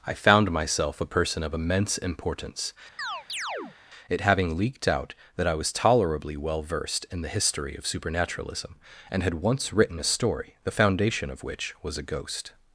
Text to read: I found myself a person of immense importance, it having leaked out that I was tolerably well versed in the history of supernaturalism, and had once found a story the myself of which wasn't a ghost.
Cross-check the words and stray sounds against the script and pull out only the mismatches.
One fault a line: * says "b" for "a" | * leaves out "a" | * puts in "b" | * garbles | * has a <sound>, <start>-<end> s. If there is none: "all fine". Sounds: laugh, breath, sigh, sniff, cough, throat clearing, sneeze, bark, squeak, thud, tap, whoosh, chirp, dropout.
* has a chirp, 3.0-3.8 s
* says "written" for "found"
* says "foundation" for "myself"
* says "was" for "wasn't"